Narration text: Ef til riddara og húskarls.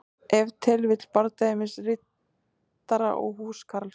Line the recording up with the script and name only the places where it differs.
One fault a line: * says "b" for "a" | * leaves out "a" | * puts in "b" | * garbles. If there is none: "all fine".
* puts in "vill bardagi milli"